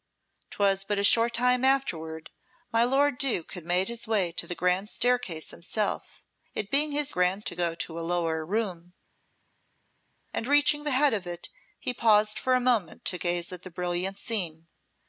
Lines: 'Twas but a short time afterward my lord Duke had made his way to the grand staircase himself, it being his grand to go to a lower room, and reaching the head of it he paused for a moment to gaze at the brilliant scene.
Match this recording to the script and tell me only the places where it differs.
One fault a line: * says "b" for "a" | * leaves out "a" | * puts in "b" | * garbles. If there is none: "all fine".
all fine